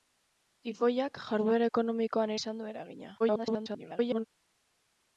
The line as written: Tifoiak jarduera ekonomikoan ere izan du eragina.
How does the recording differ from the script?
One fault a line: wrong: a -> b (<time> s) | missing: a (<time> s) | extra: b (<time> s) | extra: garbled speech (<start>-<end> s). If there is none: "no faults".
missing: ere (2.4 s)
extra: garbled speech (3.2-4.3 s)